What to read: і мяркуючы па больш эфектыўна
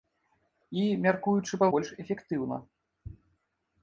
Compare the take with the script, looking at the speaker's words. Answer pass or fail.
pass